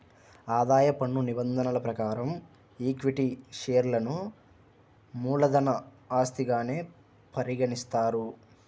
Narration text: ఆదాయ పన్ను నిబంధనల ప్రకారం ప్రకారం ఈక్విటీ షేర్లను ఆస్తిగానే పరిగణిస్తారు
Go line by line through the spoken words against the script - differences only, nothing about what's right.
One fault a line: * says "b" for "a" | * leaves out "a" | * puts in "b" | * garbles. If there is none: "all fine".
* leaves out "ప్రకారం"
* puts in "మూలధన"